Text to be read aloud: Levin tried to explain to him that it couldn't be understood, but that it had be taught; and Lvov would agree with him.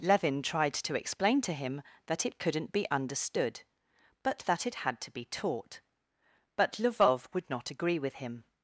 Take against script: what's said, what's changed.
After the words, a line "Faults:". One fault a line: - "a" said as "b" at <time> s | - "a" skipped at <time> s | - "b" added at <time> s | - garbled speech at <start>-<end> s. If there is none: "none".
Levin tried to explain to him that it couldn't be understood, but that it had to be taught; but Lvov would not agree with him.
Faults:
- "to" added at 5.0 s
- "and" said as "but" at 6.5 s
- "not" added at 7.5 s